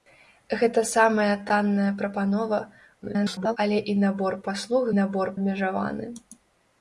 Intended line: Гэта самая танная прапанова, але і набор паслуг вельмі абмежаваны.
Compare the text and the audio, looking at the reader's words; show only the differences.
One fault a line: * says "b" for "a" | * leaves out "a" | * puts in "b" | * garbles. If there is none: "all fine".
* garbles
* says "набор" for "вельмі"